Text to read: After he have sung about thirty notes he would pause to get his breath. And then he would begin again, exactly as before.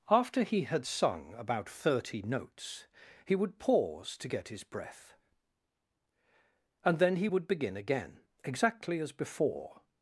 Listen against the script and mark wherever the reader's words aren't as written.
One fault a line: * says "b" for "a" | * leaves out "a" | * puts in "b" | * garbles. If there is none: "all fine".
* says "had" for "have"